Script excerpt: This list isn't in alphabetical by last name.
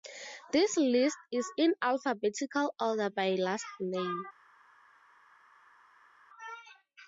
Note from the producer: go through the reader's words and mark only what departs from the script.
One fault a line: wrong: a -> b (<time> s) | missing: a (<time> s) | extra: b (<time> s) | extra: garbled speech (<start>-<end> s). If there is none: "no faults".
wrong: isn't -> is (1.3 s)
extra: order (2.8 s)